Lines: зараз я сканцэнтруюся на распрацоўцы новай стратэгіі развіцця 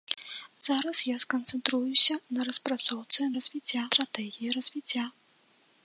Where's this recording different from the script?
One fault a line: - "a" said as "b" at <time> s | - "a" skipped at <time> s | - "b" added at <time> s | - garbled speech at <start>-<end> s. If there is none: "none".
- "новай" said as "развіцця" at 3.4 s